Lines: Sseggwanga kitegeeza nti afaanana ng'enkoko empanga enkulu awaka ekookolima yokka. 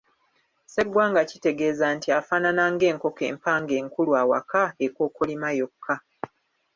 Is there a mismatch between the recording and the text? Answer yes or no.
no